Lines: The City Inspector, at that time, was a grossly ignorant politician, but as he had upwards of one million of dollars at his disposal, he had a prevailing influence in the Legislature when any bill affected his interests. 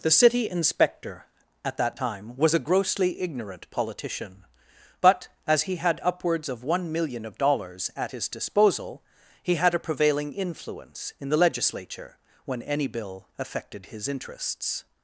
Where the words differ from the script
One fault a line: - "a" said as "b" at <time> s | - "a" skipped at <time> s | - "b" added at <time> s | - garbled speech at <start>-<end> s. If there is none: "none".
none